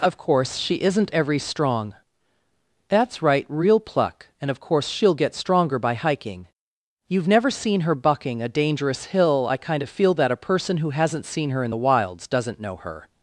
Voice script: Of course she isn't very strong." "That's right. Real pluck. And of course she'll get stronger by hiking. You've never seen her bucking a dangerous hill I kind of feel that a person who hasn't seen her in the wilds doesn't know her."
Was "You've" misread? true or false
false